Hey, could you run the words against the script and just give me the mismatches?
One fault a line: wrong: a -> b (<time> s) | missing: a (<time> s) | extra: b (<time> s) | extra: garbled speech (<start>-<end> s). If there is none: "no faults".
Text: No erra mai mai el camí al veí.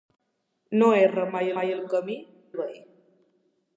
no faults